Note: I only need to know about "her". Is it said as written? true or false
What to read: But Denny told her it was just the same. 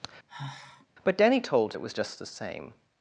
false